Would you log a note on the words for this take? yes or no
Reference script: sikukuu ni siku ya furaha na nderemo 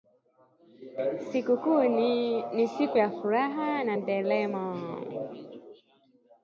no